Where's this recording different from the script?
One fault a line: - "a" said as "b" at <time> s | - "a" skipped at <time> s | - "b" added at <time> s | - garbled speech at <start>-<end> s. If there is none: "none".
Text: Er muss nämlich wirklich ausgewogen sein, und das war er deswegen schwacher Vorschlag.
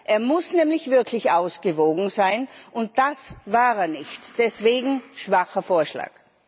- "nicht" added at 3.9 s